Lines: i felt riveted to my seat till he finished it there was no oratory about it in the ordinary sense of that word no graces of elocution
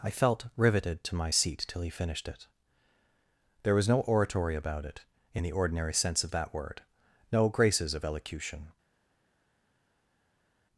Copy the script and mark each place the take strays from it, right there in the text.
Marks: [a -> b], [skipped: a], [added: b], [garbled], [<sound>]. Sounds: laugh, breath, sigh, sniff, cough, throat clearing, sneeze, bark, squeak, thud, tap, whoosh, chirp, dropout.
i felt riveted to my seat till he finished it there was no oratory about it in the ordinary sense of that word no graces of elocution